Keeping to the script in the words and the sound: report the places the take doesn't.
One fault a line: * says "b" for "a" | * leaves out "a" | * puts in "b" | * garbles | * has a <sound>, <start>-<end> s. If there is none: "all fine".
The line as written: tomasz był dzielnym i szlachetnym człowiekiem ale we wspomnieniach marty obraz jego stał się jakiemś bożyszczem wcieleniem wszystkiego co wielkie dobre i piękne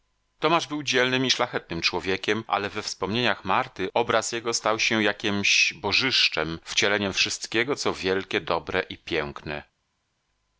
all fine